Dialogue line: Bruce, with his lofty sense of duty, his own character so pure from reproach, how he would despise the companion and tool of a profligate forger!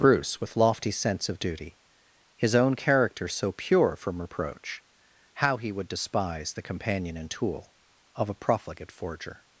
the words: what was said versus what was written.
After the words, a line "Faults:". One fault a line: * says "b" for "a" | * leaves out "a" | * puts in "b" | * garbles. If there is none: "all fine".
Bruce, with lofty sense of duty, his own character so pure from reproach, how he would despise the companion and tool of a profligate forger!
Faults:
* leaves out "his"